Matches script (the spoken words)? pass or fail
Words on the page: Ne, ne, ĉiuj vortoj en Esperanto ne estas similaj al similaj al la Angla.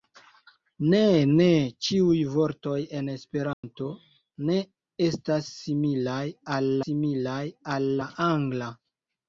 pass